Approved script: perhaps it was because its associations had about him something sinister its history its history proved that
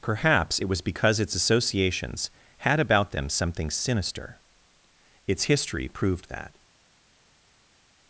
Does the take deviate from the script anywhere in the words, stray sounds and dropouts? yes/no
yes